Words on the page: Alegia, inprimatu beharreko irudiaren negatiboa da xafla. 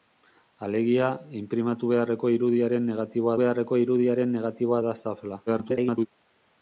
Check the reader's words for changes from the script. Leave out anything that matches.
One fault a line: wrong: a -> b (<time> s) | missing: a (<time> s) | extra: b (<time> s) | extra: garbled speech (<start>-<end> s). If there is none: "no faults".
extra: beharreko irudiaren negatiboa (3.4 s)
extra: garbled speech (5.5-6.1 s)